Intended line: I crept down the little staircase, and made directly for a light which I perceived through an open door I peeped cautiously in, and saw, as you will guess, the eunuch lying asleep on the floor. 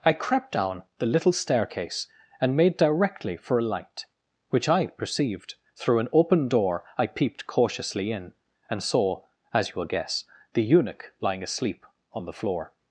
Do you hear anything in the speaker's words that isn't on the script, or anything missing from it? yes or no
no